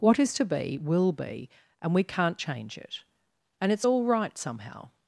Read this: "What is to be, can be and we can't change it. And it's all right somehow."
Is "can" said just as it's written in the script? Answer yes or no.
no